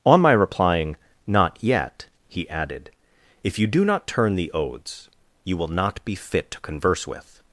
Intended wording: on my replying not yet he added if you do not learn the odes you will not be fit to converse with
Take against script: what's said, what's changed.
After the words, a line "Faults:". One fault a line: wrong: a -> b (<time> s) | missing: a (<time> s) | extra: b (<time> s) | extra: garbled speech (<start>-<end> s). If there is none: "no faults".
on my replying not yet he added if you do not turn the odes you will not be fit to converse with
Faults:
wrong: learn -> turn (4.1 s)